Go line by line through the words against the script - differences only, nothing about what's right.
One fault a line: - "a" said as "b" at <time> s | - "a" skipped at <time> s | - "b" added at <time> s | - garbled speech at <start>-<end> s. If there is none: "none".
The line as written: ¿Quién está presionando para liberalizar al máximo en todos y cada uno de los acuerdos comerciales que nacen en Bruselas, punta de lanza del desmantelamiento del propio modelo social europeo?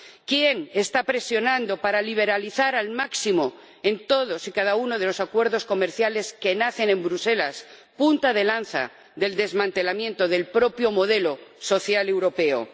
none